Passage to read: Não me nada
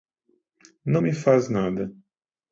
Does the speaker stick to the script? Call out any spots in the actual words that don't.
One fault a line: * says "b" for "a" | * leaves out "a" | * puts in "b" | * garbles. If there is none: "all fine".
* puts in "faz"